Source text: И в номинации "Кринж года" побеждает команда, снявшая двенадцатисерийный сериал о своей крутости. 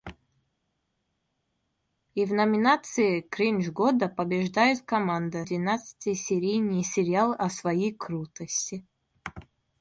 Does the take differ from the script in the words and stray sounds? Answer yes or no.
yes